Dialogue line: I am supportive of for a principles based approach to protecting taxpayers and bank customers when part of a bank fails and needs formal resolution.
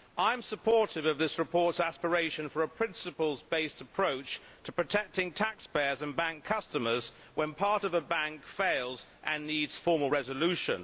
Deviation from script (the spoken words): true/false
true